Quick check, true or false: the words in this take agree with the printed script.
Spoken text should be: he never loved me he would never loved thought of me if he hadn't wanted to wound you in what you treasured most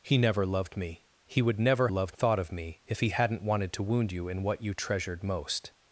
true